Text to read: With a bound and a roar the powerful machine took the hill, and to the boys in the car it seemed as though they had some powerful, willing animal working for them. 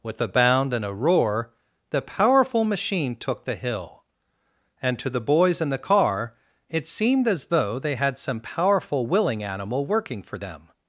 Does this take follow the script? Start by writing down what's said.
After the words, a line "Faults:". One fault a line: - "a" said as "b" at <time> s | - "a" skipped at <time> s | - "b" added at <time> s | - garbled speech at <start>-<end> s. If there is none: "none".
With a bound and a roar the powerful machine took the hill, and to the boys in the car it seemed as though they had some powerful, willing animal working for them.
Faults:
none